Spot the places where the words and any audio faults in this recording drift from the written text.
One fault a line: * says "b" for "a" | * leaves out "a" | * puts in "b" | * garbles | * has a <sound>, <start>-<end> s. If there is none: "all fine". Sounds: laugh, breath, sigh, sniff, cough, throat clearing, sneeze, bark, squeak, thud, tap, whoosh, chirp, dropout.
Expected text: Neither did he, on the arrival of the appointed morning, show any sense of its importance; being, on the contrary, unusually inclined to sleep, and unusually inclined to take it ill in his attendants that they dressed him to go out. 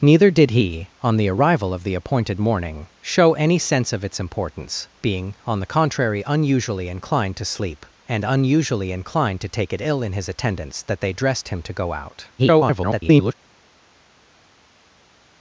* garbles